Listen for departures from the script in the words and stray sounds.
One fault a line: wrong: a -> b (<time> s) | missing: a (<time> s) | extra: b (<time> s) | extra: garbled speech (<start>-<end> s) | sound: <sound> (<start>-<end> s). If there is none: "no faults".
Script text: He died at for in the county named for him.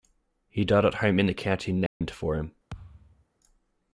wrong: for -> home (0.9 s)
sound: dropout (1.9-2.0 s)
sound: thud (2.7-3.3 s)